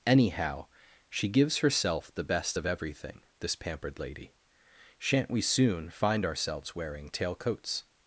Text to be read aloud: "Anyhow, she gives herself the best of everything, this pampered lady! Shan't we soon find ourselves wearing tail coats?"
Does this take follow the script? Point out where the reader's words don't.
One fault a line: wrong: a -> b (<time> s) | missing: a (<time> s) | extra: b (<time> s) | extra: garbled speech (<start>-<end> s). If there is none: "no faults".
no faults